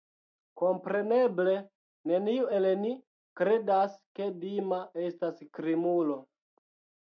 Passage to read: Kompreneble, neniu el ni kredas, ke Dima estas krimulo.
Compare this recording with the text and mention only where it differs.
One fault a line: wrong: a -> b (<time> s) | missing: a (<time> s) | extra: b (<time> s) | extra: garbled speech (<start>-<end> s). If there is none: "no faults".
no faults